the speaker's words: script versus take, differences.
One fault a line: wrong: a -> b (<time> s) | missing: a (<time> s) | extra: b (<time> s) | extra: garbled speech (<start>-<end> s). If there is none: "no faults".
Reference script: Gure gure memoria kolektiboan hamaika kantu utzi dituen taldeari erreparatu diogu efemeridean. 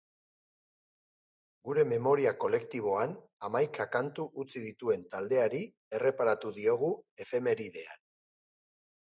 missing: gure (1.8 s)